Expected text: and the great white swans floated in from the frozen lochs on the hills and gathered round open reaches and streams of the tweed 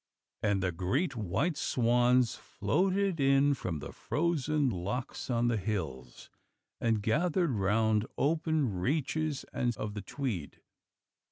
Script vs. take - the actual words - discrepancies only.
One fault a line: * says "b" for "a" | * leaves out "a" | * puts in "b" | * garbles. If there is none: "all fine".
* leaves out "streams"